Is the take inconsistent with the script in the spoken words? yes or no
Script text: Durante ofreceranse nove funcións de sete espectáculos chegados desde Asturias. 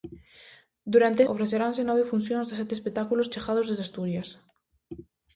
no